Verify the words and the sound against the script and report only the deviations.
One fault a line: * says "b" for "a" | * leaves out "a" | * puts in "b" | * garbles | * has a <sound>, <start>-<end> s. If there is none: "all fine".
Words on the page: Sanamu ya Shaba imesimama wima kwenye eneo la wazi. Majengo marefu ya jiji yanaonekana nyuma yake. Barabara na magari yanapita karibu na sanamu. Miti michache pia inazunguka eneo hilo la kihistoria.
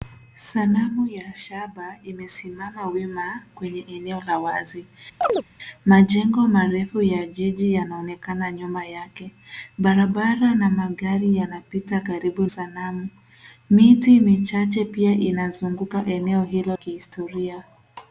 * has a chirp, 5.2-5.4 s
* leaves out "na"
* leaves out "la"